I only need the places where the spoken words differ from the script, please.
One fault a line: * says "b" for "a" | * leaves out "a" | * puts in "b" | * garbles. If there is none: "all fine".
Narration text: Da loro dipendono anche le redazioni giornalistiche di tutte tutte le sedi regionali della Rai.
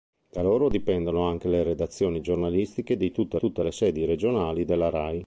all fine